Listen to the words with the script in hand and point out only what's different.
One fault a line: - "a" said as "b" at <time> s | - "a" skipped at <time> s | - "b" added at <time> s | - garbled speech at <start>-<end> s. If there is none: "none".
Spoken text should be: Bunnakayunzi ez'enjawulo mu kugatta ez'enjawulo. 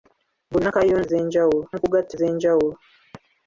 none